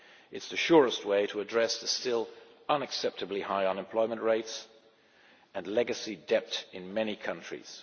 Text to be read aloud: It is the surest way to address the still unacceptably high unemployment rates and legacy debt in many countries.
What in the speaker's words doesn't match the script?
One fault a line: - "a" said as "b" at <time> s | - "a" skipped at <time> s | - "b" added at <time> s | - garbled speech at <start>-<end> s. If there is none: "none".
none